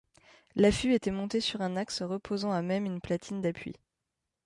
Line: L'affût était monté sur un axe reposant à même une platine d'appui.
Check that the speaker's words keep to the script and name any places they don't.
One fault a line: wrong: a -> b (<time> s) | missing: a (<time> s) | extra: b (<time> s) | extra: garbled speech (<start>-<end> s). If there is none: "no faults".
no faults